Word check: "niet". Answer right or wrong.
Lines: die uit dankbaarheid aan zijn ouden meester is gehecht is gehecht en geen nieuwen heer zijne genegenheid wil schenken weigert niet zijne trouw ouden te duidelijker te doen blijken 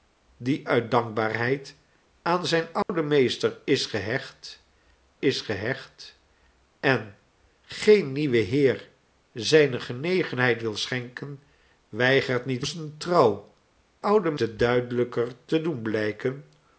right